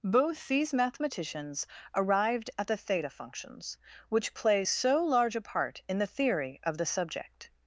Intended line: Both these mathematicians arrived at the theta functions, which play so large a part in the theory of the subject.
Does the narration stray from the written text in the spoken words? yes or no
no